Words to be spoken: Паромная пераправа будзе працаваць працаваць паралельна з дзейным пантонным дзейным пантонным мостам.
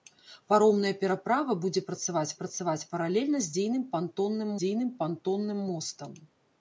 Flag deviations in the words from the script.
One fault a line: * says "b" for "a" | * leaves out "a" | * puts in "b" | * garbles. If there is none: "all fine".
all fine